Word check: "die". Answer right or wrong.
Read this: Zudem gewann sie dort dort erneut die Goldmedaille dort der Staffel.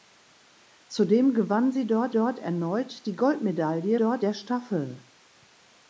right